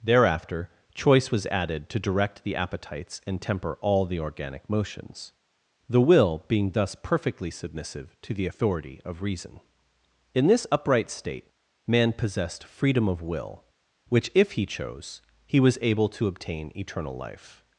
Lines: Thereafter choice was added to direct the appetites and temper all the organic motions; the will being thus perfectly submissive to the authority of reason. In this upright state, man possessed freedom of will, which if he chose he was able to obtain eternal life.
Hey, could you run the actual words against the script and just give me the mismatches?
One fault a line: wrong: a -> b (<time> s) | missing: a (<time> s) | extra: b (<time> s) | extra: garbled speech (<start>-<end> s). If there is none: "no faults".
no faults